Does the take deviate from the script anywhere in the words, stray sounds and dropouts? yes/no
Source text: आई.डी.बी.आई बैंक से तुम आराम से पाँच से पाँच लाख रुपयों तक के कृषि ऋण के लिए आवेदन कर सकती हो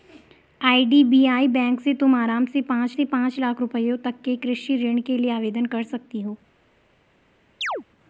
yes